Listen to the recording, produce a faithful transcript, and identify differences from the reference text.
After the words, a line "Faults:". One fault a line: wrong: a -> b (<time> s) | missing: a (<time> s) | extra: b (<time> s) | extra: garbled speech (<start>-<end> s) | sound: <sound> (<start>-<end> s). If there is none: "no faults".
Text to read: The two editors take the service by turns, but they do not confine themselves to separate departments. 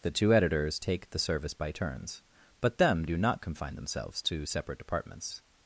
The two editors take the service by turns, but them do not confine themselves to separate departments.
Faults:
wrong: they -> them (2.8 s)